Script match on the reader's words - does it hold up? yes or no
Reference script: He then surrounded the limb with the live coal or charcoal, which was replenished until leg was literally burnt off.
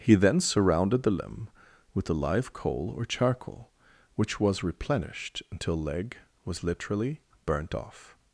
yes